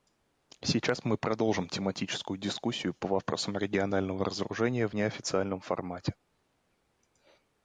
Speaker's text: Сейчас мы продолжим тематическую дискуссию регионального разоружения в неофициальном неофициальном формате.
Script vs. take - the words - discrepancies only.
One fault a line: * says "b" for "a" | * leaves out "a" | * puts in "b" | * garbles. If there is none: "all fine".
* puts in "по вопросам"
* leaves out "неофициальном"